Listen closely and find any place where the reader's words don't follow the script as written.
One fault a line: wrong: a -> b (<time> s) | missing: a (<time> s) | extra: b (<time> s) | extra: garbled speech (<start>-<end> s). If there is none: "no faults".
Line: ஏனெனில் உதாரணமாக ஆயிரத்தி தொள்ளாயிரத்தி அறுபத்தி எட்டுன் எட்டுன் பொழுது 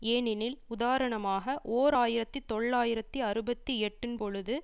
extra: ஓர் (1.7 s)
missing: எட்டுன் (4.2 s)